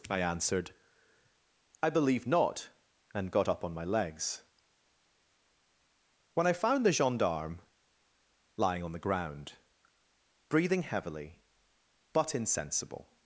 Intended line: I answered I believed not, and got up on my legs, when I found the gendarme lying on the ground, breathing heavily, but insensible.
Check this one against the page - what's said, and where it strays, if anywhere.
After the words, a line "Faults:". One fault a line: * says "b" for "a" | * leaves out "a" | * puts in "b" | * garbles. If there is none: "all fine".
I answered I believe not, and got up on my legs, when I found the gendarme lying on the ground, breathing heavily, but insensible.
Faults:
* says "believe" for "believed"